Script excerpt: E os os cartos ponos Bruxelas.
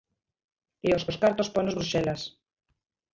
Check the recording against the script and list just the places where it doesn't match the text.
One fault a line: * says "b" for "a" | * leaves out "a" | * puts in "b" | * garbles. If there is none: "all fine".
all fine